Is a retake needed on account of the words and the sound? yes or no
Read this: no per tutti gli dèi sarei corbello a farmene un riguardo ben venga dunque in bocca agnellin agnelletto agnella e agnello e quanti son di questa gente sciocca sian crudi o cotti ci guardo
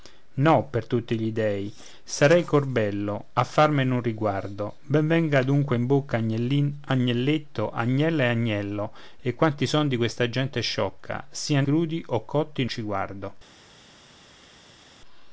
no